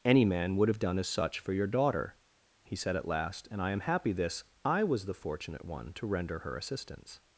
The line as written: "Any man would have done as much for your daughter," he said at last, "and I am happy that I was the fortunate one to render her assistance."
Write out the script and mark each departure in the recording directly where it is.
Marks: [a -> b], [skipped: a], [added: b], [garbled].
"Any man would have done as [much -> such] for your daughter," he said at last, "and I am happy [that -> this] I was the fortunate one to render her assistance."